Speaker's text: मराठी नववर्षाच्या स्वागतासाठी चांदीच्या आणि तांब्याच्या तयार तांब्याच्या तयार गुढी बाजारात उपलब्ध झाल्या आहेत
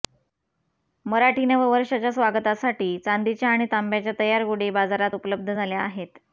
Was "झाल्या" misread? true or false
false